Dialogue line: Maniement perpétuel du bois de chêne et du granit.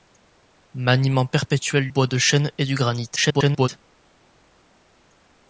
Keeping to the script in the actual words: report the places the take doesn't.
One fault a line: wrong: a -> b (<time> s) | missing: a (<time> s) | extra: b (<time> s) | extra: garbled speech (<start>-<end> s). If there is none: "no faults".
missing: du (1.9 s)
extra: garbled speech (3.2-3.7 s)